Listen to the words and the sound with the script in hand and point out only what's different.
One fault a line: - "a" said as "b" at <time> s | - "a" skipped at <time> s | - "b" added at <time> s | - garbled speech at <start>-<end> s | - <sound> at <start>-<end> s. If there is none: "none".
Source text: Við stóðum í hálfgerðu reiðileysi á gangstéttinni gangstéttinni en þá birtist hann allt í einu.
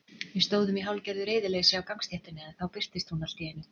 - "gangstéttinni" skipped at 2.5 s
- "hann" said as "hún" at 3.1 s